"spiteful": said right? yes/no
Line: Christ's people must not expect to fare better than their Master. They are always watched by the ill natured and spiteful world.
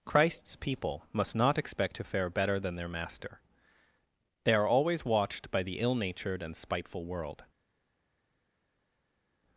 yes